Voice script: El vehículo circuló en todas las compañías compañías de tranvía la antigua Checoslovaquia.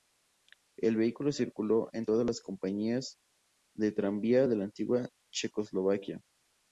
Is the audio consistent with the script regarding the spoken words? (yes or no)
no